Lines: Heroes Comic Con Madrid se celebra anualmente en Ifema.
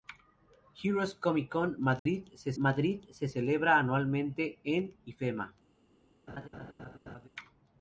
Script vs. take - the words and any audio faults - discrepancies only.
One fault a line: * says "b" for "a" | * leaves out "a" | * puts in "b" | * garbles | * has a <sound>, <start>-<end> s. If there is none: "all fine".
* has a dropout, 2.0-2.1 s
* puts in "Madrid se"
* has a laugh, 6.3-7.3 s